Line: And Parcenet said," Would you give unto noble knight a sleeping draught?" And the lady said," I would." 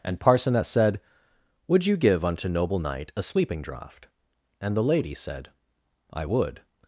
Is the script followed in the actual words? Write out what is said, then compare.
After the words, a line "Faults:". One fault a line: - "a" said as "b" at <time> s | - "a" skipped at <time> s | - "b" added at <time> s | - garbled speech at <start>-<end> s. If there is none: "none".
And Parcenet said," Would you give unto noble knight a sleeping draught?" And the lady said," I would."
Faults:
none